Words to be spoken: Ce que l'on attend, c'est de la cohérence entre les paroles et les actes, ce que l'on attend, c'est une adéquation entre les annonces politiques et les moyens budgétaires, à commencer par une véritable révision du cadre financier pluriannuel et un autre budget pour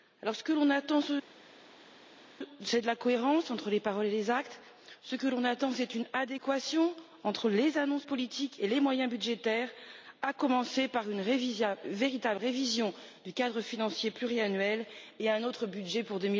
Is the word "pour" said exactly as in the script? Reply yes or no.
yes